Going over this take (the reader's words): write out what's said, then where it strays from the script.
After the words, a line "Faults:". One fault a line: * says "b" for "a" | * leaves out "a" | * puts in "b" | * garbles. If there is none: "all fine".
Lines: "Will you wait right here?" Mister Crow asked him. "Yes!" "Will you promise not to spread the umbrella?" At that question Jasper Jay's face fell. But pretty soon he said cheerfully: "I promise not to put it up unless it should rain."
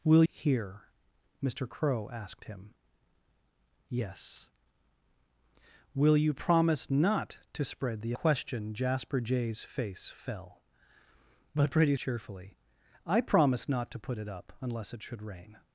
"Will here?" Mister Crow asked him. "Yes!" "Will you promise not to spread the question Jasper Jay's face fell. But pretty cheerfully: "I promise not to put it up unless it should rain."
Faults:
* leaves out "you wait right"
* leaves out "umbrella At that"
* leaves out "soon he said"